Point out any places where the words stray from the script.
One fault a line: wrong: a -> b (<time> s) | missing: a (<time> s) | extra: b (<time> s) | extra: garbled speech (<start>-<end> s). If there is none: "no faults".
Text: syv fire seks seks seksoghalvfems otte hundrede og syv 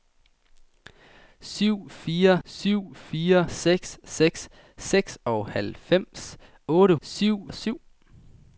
extra: syv fire (2.4 s)
wrong: hundrede -> syv (7.0 s)